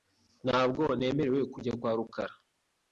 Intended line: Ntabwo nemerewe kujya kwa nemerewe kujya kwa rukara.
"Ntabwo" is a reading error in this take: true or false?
false